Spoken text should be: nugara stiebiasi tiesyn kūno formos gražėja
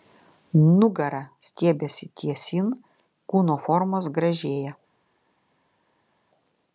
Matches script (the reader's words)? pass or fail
pass